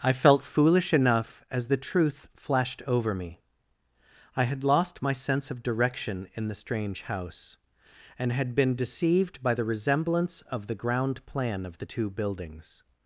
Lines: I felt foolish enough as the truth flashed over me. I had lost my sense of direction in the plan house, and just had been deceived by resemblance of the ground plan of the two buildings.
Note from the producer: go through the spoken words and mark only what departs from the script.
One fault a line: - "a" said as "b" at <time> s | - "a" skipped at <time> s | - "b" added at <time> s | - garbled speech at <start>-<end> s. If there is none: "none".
- "plan" said as "strange" at 6.5 s
- "just" skipped at 8.3 s
- "the" added at 9.5 s